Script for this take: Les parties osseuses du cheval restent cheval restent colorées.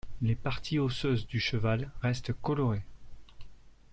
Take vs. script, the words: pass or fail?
fail